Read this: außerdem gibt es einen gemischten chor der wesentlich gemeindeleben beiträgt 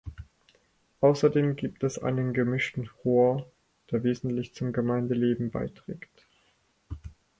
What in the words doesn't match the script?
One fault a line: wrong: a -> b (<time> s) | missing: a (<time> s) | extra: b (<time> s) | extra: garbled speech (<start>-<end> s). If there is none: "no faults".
extra: zum (4.5 s)